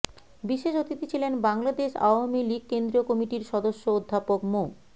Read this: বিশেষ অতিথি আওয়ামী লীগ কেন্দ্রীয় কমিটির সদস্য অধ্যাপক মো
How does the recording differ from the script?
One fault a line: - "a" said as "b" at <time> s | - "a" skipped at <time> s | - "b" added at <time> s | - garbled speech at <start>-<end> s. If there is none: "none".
- "ছিলেন বাংলাদেশ" added at 1.1 s